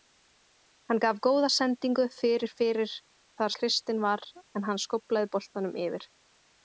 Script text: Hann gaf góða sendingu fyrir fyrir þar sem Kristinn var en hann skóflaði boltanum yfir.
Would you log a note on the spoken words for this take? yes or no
yes